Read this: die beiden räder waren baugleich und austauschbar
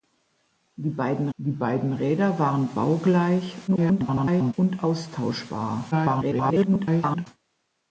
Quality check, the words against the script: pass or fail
fail